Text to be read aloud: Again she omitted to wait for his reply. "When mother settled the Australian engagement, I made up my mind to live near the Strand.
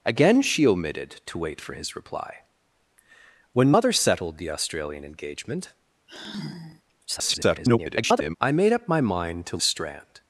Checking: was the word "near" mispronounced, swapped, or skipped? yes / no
yes